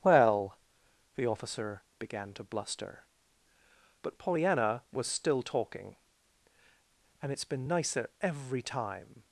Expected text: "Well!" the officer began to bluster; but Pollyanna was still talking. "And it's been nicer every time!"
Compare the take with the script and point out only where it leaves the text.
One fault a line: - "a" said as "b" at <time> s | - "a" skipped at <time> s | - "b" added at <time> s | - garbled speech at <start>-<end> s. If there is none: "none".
none